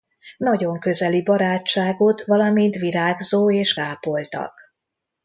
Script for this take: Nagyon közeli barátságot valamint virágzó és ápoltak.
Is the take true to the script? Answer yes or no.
yes